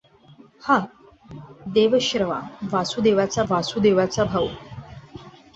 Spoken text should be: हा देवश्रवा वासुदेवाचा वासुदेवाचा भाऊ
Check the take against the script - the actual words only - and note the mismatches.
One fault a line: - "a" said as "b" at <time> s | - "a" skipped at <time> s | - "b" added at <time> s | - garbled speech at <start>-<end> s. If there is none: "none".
none